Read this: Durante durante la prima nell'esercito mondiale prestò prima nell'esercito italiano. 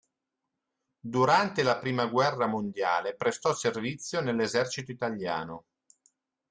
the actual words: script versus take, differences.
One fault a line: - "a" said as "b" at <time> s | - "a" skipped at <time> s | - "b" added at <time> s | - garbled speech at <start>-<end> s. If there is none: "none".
- "durante" skipped at 1.6 s
- "nell'esercito" said as "guerra" at 2.1 s
- "prima" said as "servizio" at 3.5 s